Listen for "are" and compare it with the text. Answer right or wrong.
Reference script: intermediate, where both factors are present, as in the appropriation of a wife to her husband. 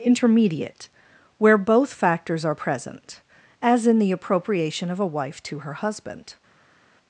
right